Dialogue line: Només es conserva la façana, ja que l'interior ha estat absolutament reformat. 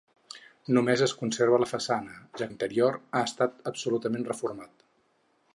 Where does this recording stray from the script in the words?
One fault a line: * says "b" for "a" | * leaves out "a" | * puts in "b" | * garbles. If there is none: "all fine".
* leaves out "que"